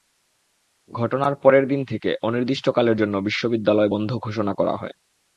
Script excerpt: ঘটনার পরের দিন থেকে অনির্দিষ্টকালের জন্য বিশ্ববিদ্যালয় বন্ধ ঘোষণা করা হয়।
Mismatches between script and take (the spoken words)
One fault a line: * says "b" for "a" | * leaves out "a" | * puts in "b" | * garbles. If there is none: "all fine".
all fine